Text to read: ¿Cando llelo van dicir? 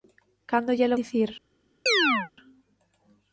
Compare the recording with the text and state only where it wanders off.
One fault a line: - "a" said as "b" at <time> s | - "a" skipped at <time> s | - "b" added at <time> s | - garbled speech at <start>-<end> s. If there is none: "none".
- "van" skipped at 1.0 s